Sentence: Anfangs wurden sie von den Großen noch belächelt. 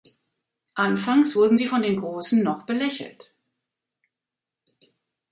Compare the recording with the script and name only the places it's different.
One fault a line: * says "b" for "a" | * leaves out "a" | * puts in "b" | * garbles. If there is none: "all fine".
all fine